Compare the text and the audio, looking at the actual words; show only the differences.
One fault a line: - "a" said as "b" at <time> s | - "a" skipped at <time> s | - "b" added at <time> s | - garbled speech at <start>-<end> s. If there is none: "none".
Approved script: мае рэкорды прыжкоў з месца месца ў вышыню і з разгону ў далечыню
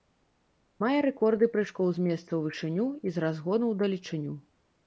- "месца" skipped at 2.2 s